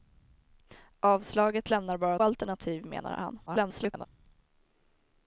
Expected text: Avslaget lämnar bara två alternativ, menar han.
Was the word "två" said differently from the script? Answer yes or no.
yes